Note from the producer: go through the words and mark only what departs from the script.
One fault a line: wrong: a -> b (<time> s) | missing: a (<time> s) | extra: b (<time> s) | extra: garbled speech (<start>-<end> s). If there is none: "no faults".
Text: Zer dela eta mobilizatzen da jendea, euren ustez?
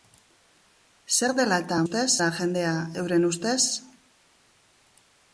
wrong: mobilizatzen -> ustez (1.8 s)